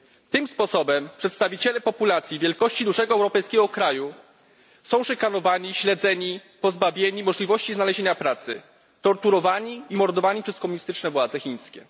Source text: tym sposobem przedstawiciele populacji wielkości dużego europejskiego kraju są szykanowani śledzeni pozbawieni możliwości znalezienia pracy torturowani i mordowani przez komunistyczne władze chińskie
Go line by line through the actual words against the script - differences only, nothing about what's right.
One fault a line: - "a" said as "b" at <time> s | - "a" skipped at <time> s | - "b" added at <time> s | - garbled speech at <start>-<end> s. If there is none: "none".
none